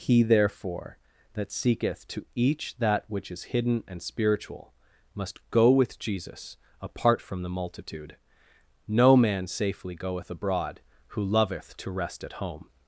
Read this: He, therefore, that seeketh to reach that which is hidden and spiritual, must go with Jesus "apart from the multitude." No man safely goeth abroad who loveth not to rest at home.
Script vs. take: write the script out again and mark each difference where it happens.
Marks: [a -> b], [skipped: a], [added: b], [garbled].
He, therefore, that seeketh to [reach -> each] that which is hidden and spiritual, must go with Jesus "apart from the multitude." No man safely goeth abroad who loveth [skipped: not] to rest at home.